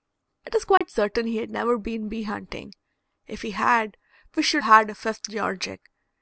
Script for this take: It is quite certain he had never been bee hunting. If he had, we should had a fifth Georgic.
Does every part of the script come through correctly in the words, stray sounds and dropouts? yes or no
no